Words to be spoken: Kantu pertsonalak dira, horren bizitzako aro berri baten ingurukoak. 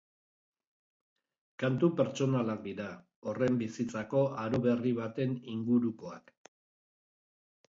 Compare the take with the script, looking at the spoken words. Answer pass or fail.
pass